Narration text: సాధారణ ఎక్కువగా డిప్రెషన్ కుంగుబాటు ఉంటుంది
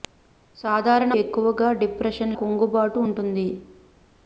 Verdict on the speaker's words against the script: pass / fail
pass